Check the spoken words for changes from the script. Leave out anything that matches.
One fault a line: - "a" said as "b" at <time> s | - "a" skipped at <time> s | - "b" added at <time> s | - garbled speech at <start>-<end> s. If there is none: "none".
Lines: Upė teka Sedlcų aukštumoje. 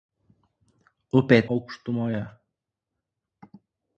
- "teka Sedlcų" skipped at 1.4 s